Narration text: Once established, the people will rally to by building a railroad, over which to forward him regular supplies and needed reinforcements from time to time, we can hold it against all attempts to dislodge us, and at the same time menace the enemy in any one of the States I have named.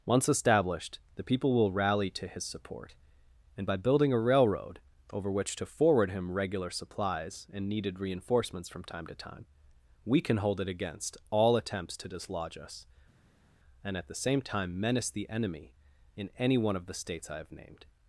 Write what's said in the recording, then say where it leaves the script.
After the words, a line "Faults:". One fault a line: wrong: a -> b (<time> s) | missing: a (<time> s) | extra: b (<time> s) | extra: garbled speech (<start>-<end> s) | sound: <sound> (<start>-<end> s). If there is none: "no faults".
Once established, the people will rally to his support, and by building a railroad, over which to forward him regular supplies and needed reinforcements from time to time, we can hold it against all attempts to dislodge us, and at the same time menace the enemy in any one of the States I have named.
Faults:
extra: his support and (2.2 s)